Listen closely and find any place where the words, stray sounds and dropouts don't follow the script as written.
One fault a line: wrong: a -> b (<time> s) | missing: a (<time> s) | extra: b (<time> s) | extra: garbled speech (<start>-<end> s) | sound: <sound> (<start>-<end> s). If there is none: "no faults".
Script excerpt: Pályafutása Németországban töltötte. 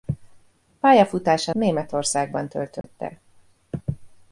sound: dropout (2.8-2.8 s)